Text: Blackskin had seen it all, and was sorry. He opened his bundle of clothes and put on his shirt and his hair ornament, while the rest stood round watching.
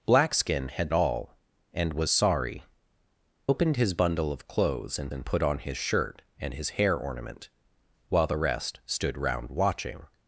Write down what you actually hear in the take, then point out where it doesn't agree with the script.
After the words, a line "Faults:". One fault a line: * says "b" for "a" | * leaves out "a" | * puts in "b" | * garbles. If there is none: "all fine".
Blackskin had all, and was sorry. Opened his bundle of clothes and and put on his shirt and his hair ornament, while the rest stood round watching.
Faults:
* leaves out "seen it"
* leaves out "He"
* puts in "and"